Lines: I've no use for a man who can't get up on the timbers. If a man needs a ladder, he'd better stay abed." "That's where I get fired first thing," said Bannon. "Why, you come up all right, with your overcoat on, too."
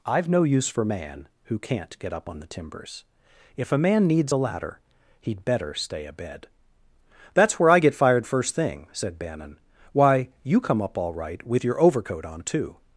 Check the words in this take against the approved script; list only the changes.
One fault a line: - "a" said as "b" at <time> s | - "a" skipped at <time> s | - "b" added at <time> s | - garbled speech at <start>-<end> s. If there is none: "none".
- "a" skipped at 0.8 s